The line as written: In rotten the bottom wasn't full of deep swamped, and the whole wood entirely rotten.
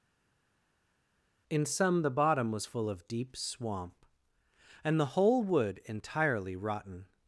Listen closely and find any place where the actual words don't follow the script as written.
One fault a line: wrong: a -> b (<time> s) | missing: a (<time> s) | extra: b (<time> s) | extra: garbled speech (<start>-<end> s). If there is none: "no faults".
wrong: rotten -> some (1.7 s)
wrong: wasn't -> was (2.5 s)
wrong: swamped -> swamp (3.4 s)